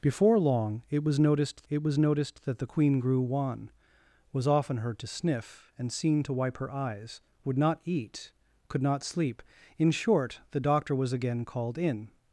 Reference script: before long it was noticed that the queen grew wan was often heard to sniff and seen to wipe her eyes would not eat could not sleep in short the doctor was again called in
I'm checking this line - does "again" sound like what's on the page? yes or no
yes